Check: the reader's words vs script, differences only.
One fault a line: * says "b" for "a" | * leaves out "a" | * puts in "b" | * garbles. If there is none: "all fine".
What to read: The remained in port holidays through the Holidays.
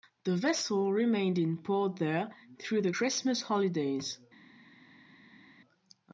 * puts in "vessel"
* says "there" for "holidays"
* puts in "Christmas"